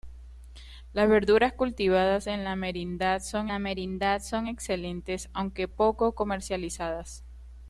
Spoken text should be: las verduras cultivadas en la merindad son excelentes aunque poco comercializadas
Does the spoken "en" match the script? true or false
true